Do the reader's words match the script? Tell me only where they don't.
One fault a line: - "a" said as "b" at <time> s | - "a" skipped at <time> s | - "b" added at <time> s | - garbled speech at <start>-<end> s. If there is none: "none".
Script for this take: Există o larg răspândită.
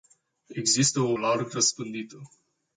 none